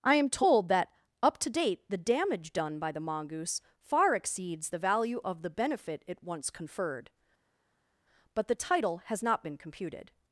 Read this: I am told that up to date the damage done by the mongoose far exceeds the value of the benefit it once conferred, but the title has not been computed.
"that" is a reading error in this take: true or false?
false